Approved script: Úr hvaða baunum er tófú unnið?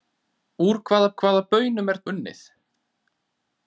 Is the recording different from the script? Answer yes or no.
yes